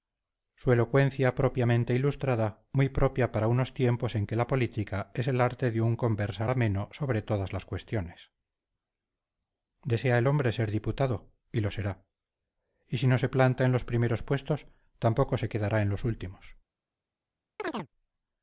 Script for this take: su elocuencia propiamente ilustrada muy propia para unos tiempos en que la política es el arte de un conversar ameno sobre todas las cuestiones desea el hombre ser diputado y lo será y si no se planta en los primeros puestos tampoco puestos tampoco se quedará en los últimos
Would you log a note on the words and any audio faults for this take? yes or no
yes